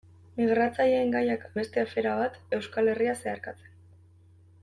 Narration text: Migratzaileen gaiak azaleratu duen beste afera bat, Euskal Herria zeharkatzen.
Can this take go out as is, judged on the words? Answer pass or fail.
fail